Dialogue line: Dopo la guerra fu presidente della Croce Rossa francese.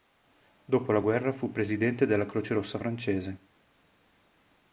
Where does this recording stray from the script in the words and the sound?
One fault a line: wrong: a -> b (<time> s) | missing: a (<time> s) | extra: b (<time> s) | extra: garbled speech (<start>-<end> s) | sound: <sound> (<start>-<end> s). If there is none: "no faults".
no faults